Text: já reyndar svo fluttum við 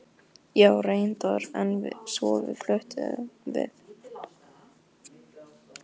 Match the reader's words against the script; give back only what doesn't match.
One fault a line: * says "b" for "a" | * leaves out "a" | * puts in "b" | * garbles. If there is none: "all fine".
* puts in "en"